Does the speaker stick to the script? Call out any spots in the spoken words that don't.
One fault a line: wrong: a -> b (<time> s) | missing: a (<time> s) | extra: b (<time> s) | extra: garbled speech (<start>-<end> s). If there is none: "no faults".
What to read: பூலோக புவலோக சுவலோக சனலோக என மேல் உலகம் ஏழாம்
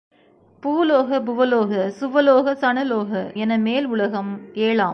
no faults